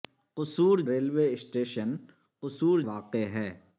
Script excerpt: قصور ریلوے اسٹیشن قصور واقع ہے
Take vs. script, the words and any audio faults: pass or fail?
pass